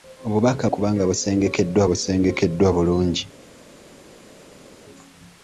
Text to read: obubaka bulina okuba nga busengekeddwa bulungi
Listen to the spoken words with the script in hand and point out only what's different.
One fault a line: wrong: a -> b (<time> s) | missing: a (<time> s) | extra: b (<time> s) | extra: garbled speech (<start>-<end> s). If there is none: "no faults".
missing: bulina (0.6 s)
extra: busengekeddwa (1.9 s)